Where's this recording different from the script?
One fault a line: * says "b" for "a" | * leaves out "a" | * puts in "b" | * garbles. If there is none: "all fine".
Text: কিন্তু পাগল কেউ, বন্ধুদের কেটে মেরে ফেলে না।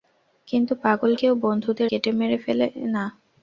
all fine